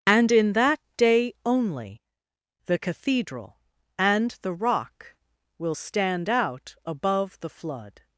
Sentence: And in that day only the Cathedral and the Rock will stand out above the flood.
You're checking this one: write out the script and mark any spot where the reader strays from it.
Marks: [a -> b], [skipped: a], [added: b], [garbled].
And in that day only the Cathedral and the Rock will stand out above the flood.